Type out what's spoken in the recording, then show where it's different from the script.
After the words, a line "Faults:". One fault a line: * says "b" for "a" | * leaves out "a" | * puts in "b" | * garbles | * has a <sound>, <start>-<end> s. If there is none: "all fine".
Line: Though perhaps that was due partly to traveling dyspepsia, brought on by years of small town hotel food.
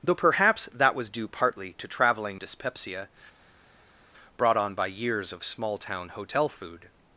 Though perhaps that was due partly to traveling dyspepsia, brought on by years of small town hotel food.
Faults:
all fine